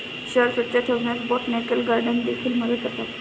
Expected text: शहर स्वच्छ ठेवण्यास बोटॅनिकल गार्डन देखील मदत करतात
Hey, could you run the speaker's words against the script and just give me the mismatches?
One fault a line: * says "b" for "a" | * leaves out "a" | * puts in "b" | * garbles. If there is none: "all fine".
all fine